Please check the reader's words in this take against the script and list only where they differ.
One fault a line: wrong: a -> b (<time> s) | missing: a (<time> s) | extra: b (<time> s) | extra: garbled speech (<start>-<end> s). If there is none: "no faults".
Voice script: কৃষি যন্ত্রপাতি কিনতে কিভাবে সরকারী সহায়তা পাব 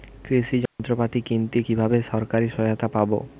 no faults